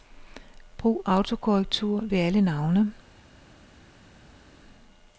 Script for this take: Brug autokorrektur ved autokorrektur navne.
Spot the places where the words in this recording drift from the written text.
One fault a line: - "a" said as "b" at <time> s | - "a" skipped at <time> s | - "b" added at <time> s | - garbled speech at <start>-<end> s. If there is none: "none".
- "autokorrektur" said as "alle" at 2.2 s